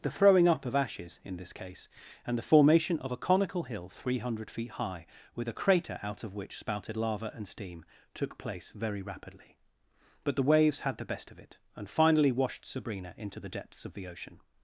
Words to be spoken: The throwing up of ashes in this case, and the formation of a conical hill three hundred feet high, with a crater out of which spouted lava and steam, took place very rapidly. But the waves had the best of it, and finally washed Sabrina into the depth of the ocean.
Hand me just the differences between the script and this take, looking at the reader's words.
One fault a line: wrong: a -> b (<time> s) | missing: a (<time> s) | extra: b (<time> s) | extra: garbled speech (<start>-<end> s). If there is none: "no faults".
wrong: depth -> depths (13.5 s)